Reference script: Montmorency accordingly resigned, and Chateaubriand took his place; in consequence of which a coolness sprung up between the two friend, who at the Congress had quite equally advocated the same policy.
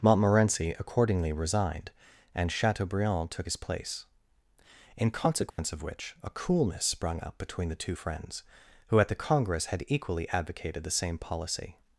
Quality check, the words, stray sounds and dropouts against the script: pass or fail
fail